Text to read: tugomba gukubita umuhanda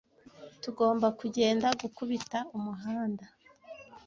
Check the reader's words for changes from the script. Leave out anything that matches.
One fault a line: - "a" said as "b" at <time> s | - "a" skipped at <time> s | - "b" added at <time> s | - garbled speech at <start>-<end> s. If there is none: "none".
- "kugenda" added at 1.2 s